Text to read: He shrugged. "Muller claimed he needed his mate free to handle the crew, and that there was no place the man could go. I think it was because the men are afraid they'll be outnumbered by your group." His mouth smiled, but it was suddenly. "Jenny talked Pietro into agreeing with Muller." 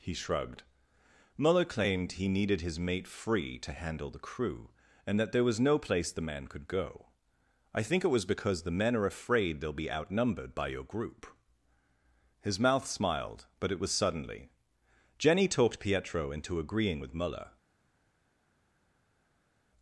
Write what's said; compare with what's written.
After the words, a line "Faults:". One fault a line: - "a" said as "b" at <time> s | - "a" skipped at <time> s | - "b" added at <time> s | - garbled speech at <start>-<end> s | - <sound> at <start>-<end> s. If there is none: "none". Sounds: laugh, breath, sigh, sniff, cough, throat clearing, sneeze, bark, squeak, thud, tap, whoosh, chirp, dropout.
He shrugged. "Muller claimed he needed his mate free to handle the crew, and that there was no place the man could go. I think it was because the men are afraid they'll be outnumbered by your group." His mouth smiled, but it was suddenly. "Jenny talked Pietro into agreeing with Muller."
Faults:
none